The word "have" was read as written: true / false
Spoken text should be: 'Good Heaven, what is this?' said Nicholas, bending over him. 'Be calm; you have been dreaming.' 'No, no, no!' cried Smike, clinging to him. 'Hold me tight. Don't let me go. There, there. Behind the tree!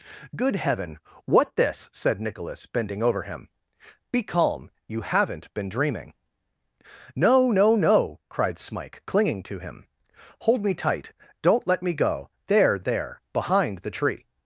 false